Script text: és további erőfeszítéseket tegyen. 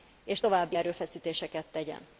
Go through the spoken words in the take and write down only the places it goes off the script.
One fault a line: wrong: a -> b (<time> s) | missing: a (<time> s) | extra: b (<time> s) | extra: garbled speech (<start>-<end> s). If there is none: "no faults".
no faults